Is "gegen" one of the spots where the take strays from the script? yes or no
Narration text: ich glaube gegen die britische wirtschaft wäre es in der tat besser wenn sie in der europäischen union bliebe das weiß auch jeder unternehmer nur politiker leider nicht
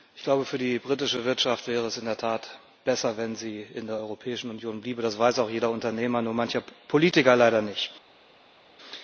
yes